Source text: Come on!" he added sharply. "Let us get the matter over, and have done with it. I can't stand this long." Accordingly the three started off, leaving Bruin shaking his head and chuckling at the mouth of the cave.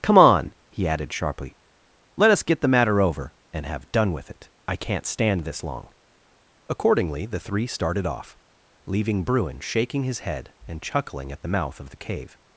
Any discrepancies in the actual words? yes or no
no